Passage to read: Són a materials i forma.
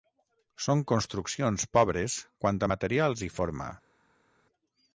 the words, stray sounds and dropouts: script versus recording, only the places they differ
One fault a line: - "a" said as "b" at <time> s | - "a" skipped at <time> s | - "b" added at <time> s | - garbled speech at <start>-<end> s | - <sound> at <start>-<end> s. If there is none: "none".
- "construccions pobres quant" added at 0.9 s